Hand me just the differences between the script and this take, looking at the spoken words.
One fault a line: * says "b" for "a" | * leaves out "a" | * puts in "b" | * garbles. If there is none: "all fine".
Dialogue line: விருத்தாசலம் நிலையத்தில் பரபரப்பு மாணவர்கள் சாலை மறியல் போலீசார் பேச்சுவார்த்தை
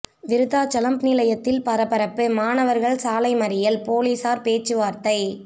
all fine